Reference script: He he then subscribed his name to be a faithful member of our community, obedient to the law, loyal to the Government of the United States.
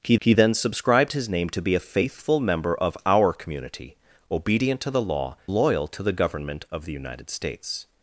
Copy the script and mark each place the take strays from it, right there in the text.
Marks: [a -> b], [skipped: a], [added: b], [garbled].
He he then subscribed his name to be a faithful member of our community, obedient to the law, loyal to the Government of the United States.